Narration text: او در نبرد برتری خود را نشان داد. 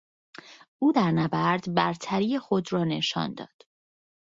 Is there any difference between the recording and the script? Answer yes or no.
no